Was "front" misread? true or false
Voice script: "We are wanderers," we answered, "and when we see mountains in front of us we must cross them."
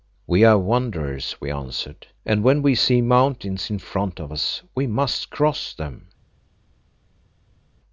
false